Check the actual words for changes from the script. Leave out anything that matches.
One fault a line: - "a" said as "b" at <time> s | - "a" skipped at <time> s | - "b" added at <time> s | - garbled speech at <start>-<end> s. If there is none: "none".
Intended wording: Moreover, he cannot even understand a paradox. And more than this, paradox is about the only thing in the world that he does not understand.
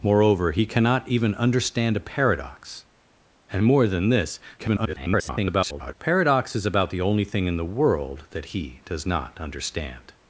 - garbled speech at 4.6-5.9 s